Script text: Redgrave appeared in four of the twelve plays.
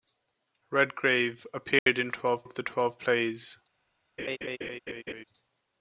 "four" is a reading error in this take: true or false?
true